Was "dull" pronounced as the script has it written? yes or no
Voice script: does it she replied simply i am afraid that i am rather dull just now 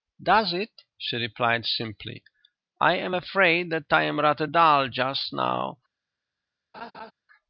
yes